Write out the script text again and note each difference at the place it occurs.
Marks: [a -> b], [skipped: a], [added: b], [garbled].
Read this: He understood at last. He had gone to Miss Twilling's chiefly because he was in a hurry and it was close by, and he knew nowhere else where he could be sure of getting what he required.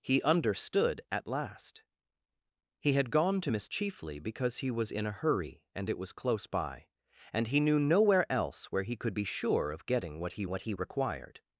He understood at last. He had gone to Miss [skipped: Twilling's] chiefly because he was in a hurry and it was close by, and he knew nowhere else where he could be sure of getting what he [added: what he] required.